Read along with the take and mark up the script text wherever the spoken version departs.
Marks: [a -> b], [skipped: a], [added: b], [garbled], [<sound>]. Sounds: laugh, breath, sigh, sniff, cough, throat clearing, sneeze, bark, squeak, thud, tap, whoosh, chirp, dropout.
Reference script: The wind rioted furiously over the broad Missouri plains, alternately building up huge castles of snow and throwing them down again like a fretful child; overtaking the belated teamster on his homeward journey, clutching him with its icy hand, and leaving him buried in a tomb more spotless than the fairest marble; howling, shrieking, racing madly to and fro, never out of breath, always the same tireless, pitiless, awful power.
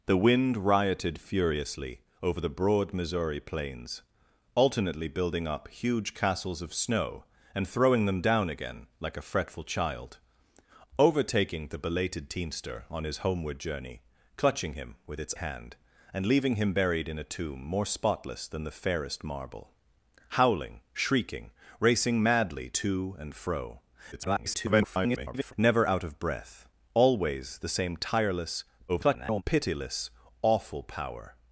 The wind rioted furiously over the broad Missouri plains, alternately building up huge castles of snow and throwing them down again like a fretful child; overtaking the belated teamster on his homeward journey, clutching him with its [skipped: icy] hand, and leaving him buried in a tomb more spotless than the fairest marble; howling, shrieking, racing madly to and fro, [garbled] never out of breath, always the same tireless, [garbled] pitiless, awful power.